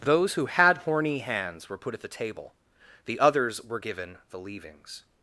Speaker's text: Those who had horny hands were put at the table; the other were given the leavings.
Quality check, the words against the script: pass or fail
fail